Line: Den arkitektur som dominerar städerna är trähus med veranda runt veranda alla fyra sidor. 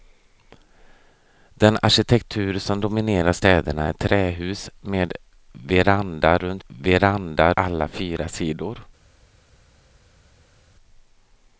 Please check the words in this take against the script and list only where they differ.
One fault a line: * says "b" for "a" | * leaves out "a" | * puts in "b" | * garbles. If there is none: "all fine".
all fine